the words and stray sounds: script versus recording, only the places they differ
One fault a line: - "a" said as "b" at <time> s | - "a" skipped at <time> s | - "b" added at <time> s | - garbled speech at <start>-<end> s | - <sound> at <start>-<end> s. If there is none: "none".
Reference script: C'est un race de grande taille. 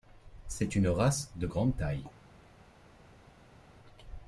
- "un" said as "une" at 0.8 s